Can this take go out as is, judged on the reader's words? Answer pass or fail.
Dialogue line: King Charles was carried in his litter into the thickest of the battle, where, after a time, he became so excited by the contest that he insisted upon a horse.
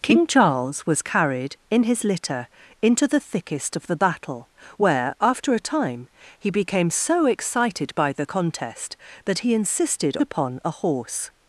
pass